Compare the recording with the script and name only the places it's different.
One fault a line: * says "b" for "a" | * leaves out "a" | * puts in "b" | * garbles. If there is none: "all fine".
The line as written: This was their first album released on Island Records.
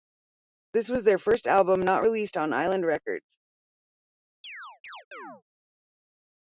* puts in "not"